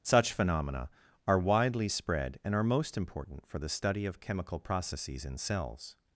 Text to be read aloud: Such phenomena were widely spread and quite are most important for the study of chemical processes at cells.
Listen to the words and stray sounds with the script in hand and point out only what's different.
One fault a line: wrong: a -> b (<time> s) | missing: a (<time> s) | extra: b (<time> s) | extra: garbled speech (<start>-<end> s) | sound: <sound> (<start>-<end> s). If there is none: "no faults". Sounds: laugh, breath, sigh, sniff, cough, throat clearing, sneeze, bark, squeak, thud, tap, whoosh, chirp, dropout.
wrong: were -> are (1.3 s)
missing: quite (2.5 s)
wrong: at -> in (5.2 s)